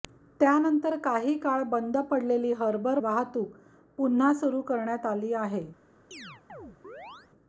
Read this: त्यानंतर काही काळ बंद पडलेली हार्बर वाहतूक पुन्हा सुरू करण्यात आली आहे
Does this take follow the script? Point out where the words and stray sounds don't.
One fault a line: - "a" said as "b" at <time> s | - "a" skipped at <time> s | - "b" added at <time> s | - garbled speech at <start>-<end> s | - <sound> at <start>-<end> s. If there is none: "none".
- chirp at 6.1-7.3 s